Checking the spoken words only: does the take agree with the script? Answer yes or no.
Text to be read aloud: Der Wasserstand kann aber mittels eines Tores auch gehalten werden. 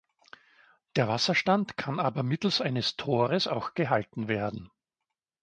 yes